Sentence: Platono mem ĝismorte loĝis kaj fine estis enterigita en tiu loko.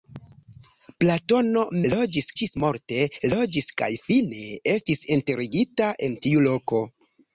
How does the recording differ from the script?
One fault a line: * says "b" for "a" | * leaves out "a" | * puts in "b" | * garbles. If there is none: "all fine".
* says "loĝis" for "mem"